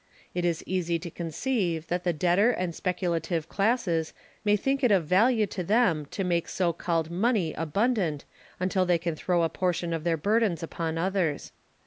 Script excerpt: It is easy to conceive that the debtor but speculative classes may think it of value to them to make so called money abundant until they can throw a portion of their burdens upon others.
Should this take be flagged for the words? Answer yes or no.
yes